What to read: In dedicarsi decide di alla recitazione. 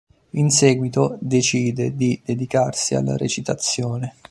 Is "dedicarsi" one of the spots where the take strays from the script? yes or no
yes